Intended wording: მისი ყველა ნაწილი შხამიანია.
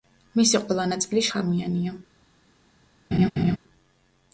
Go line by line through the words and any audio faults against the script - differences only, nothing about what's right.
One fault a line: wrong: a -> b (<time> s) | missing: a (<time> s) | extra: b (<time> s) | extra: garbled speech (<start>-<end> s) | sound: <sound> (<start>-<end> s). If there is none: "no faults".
sound: laugh (3.1-3.6 s)